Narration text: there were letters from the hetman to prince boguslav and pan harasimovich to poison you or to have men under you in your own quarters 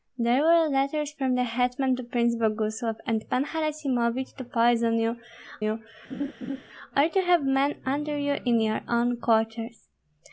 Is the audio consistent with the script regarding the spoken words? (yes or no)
no